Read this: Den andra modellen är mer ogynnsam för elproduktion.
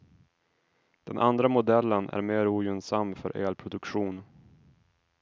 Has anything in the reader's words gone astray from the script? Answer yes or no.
no